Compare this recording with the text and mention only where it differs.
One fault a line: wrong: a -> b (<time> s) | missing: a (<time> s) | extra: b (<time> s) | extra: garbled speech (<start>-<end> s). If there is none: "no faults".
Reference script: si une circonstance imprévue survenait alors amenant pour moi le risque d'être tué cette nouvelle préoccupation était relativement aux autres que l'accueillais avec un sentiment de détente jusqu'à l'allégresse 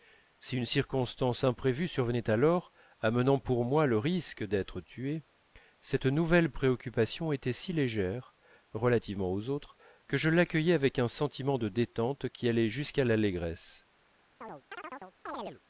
extra: si légère (7.5 s)
extra: je (10.2 s)
extra: qui allait (12.3 s)